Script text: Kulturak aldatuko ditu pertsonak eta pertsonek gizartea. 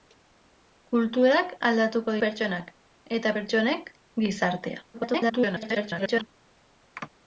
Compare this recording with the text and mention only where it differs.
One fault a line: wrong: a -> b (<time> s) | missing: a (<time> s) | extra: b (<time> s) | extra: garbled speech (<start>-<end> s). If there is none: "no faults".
missing: ditu (2.1 s)
extra: garbled speech (4.9-6.3 s)